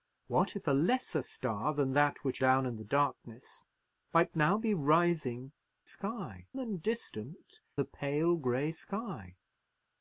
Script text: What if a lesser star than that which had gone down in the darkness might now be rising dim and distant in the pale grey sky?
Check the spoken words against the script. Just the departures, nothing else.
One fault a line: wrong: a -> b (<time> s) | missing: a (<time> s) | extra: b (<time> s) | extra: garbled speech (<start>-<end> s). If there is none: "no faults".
missing: had gone (2.4 s)
wrong: dim -> sky (5.8 s)
missing: in (7.6 s)